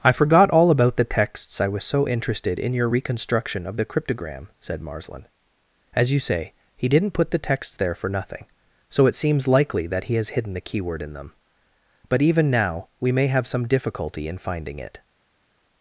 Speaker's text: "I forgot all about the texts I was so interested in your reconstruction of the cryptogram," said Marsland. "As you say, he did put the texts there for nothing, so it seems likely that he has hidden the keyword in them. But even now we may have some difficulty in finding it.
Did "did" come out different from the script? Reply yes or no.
yes